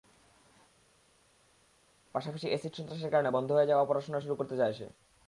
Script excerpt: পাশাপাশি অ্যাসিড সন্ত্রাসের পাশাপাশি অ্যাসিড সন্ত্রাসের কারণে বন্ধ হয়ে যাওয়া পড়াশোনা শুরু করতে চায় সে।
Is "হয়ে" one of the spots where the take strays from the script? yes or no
no